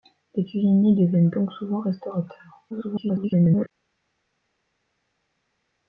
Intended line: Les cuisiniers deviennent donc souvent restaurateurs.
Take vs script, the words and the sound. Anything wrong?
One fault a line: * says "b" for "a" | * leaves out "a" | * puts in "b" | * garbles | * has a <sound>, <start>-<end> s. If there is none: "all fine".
* garbles